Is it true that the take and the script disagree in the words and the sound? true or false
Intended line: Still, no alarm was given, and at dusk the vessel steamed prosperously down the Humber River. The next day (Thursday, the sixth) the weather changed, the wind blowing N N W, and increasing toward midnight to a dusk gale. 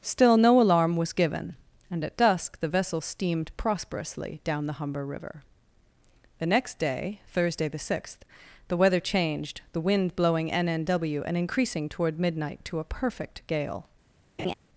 true